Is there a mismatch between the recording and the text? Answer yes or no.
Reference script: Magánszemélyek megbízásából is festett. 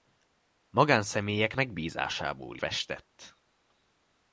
yes